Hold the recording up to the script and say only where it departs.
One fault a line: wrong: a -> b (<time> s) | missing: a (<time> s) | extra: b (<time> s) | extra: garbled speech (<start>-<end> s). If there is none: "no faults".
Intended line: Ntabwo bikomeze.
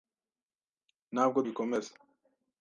no faults